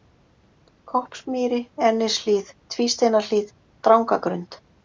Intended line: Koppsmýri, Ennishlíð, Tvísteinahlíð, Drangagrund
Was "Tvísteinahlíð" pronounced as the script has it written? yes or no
yes